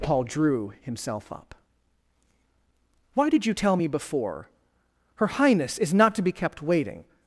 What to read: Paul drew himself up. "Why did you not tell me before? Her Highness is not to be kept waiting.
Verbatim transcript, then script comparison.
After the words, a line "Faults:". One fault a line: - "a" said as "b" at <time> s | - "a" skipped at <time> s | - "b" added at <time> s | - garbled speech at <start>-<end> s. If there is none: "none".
Paul drew himself up. "Why did you tell me before? Her Highness is not to be kept waiting.
Faults:
- "not" skipped at 3.5 s